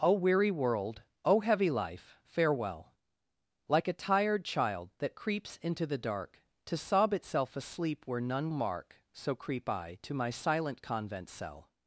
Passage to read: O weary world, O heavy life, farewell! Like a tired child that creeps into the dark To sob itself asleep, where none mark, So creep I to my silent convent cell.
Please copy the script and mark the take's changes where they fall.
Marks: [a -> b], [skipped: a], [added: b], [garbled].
O weary world, O heavy life, farewell! Like a tired child that creeps into the dark To sob itself asleep, where none mark, So creep I to my silent convent cell.